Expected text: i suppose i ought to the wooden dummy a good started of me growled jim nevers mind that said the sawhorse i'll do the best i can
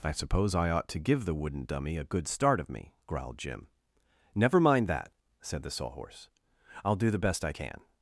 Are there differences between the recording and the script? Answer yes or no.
yes